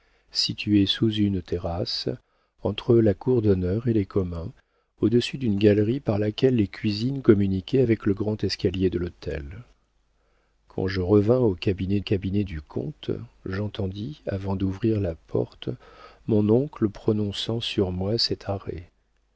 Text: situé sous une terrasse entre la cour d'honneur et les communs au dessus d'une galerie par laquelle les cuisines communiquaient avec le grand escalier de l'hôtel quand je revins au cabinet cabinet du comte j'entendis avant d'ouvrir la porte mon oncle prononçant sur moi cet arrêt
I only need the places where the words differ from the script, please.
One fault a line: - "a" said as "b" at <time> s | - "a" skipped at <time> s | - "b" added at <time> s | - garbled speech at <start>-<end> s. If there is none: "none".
none